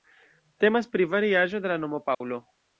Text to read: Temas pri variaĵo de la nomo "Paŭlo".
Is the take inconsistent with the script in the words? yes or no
no